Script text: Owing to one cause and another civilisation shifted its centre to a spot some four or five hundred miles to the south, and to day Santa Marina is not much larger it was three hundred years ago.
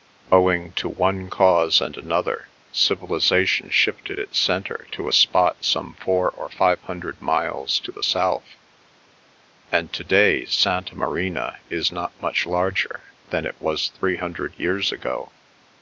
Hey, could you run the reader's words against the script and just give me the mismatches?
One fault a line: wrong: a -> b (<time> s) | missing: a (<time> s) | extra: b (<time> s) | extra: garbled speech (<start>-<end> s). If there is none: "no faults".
extra: than (13.3 s)